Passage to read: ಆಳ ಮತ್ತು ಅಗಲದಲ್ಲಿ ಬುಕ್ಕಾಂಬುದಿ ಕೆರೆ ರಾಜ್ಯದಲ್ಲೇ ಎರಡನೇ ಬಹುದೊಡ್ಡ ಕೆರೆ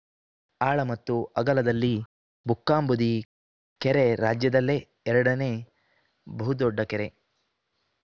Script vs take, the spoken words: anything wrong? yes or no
no